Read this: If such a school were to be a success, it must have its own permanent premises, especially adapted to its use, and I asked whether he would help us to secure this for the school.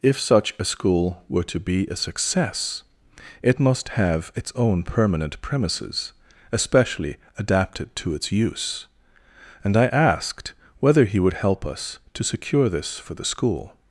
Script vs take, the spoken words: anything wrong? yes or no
no